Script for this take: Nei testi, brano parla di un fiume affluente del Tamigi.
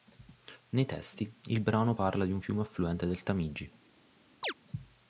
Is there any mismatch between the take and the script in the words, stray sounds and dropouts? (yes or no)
yes